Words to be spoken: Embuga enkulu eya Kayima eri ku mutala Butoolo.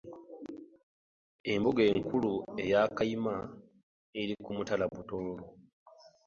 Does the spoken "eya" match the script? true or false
true